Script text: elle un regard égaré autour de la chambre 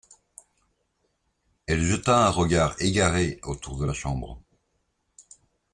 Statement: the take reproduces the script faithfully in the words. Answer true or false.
false